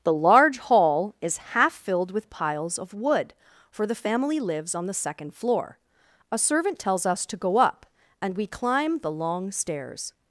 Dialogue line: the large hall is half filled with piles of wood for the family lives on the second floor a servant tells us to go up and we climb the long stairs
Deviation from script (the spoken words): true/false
false